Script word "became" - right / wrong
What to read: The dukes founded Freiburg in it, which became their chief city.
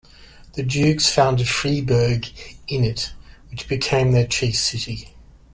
right